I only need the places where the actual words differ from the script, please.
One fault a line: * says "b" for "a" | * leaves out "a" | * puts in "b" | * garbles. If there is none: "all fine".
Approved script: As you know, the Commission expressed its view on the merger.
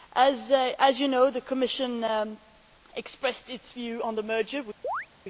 all fine